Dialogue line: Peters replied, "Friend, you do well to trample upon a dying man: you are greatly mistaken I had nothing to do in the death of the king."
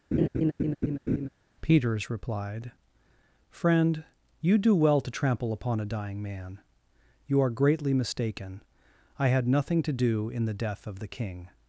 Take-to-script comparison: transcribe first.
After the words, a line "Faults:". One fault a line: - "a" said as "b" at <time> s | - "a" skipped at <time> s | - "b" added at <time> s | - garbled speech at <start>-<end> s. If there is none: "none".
Peters replied, "Friend, you do well to trample upon a dying man: you are greatly mistaken I had nothing to do in the death of the king."
Faults:
none